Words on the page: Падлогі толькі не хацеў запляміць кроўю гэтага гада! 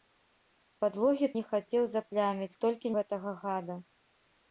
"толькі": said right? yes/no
no